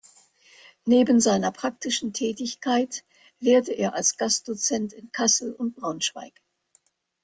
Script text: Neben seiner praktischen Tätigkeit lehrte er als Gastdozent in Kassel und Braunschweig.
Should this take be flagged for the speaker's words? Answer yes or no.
no